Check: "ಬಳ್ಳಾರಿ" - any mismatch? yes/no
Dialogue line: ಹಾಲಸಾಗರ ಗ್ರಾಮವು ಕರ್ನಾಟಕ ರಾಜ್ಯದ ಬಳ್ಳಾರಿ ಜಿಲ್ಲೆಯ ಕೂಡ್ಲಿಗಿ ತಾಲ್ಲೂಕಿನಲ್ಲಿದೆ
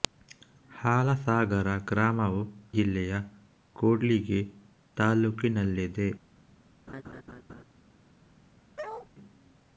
yes